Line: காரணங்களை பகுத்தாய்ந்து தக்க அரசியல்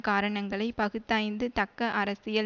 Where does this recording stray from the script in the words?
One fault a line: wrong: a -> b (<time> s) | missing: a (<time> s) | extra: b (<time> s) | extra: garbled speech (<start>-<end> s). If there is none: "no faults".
no faults